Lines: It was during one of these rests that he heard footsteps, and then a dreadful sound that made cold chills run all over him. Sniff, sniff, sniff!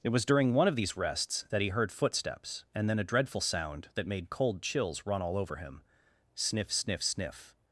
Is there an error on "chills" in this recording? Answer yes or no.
no